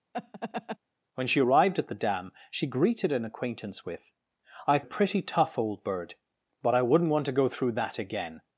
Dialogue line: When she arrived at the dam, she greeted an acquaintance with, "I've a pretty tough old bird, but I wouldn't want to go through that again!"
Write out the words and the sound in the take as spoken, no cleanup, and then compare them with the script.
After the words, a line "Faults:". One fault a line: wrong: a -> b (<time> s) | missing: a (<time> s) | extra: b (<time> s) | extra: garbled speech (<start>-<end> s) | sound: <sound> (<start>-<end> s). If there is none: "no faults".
When she arrived at the dam, she greeted an acquaintance with, "I've a pretty tough old bird, but I wouldn't want to go through that again!"
Faults:
sound: laugh (0.1-0.8 s)